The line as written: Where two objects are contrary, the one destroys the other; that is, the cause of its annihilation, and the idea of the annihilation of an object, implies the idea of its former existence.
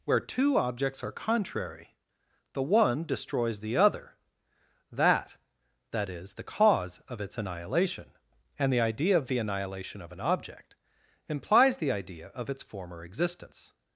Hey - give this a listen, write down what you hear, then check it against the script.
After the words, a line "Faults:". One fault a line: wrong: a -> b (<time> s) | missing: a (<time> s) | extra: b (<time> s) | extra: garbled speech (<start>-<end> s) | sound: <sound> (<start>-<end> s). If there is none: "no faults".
Where two objects are contrary, the one destroys the other; that that is, the cause of its annihilation, and the idea of the annihilation of an object, implies the idea of its former existence.
Faults:
extra: that (5.9 s)